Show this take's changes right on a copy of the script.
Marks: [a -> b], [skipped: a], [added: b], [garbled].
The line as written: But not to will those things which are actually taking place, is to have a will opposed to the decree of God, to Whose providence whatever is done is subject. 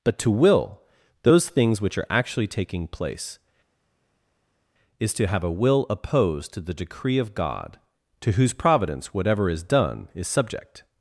But [skipped: not] to will those things which are actually taking place, is to have a will opposed to the decree of God, to Whose providence whatever is done is subject.